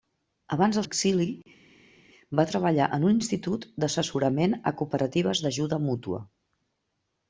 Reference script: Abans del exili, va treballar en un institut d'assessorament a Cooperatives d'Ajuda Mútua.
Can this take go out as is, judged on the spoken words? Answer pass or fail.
pass